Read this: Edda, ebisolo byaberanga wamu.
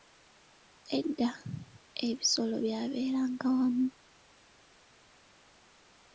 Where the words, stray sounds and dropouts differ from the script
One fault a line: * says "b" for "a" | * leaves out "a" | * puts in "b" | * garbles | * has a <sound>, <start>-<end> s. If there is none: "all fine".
all fine